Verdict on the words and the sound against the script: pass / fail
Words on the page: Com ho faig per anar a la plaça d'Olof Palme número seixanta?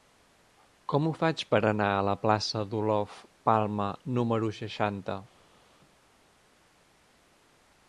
pass